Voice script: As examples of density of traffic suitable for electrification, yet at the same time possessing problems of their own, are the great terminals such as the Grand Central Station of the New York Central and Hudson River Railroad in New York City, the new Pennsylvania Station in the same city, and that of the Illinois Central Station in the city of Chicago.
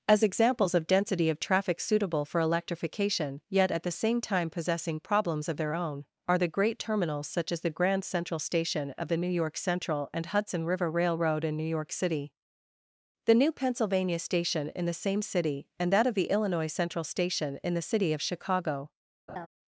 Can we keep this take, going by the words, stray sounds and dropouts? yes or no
no